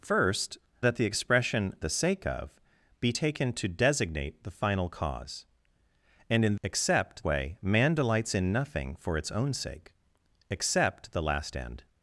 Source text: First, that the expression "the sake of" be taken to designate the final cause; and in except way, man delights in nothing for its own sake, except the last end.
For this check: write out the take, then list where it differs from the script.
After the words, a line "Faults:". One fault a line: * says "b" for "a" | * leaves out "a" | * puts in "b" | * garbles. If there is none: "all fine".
First, that the expression "the sake of" be taken to designate the final cause; and in except way, man delights in nothing for its own sake, except the last end.
Faults:
all fine